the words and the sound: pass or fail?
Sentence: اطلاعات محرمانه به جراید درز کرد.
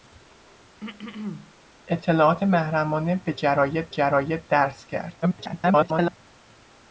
fail